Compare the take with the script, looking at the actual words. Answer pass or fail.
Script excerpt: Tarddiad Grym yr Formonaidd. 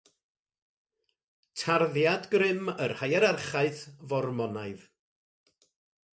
fail